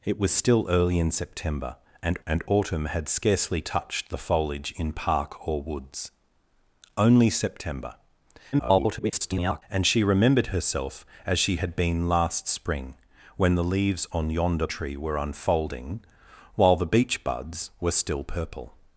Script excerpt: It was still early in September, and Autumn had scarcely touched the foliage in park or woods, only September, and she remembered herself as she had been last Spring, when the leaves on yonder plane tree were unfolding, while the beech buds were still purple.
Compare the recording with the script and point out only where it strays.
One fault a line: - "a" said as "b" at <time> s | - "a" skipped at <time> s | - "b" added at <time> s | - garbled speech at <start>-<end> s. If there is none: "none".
- "and" added at 2.2 s
- garbled speech at 8.5-9.6 s
- "plane" skipped at 14.7 s